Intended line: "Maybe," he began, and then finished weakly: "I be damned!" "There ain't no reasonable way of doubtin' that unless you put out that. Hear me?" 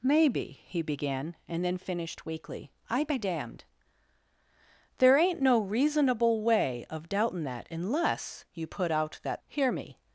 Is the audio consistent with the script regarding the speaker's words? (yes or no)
yes